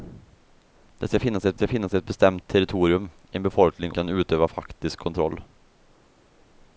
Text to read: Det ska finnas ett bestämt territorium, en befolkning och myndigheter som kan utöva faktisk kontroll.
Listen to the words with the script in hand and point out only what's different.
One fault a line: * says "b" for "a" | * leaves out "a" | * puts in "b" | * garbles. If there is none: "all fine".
* puts in "ska finnas ett"
* leaves out "och myndigheter som"